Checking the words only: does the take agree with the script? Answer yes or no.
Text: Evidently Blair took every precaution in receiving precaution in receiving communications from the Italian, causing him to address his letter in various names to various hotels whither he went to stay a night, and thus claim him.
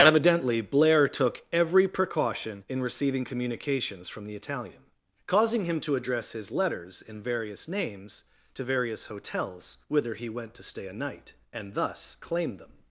no